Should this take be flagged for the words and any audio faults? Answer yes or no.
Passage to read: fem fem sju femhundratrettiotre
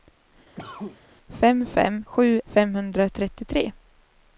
yes